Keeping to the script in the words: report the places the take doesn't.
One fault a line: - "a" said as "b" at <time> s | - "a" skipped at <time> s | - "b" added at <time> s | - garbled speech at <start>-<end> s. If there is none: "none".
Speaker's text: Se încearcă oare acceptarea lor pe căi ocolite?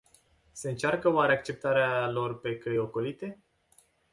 none